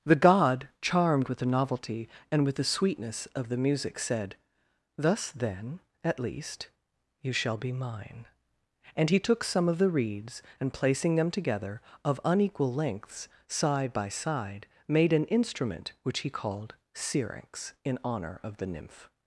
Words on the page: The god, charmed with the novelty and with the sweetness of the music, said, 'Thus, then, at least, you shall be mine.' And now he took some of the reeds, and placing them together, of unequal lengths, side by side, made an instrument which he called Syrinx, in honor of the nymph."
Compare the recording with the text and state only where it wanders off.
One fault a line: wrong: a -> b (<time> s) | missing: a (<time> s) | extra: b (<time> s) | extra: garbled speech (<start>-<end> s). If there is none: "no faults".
missing: now (9.1 s)